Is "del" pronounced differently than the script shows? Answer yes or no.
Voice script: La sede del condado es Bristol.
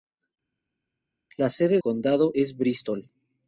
yes